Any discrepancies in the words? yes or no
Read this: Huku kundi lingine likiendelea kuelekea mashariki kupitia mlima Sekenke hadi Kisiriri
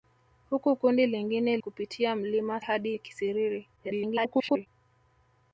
yes